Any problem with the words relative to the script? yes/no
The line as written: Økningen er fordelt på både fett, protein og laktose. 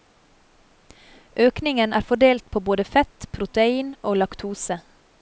no